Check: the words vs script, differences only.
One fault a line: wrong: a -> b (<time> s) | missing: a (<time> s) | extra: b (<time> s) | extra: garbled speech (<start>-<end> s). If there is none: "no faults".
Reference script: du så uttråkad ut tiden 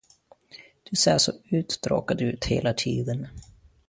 extra: ser (0.9 s)
extra: hela (2.5 s)